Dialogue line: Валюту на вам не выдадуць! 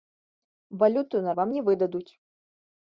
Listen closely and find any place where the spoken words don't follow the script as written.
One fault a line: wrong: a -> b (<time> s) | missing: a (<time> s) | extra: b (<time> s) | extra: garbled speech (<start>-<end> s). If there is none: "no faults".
no faults